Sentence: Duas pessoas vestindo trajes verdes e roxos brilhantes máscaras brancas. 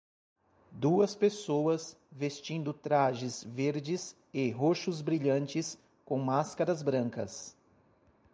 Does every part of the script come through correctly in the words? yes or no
no